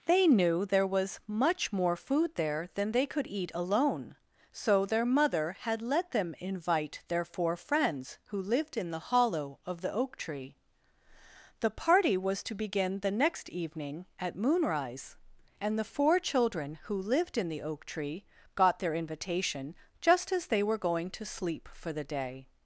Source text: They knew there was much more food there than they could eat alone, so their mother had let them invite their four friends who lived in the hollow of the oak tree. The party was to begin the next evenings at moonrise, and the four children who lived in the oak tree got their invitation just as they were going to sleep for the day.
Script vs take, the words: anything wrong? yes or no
yes